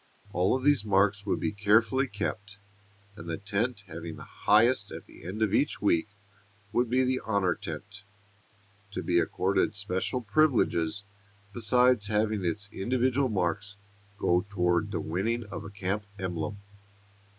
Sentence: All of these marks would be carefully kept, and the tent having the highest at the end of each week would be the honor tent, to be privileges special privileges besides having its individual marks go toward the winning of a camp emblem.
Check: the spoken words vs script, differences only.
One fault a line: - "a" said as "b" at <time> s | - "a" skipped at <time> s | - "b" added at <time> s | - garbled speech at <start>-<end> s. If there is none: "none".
- "privileges" said as "accorded" at 9.2 s